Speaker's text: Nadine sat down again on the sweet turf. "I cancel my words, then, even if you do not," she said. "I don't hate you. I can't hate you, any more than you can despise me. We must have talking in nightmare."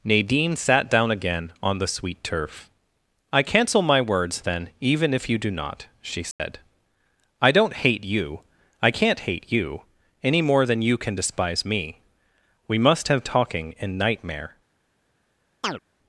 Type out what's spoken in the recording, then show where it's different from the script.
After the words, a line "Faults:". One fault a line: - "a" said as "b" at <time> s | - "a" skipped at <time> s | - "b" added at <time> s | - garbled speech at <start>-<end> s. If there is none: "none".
Nadine sat down again on the sweet turf. "I cancel my words, then, even if you do not," she said. "I don't hate you. I can't hate you, any more than you can despise me. We must have talking in nightmare."
Faults:
none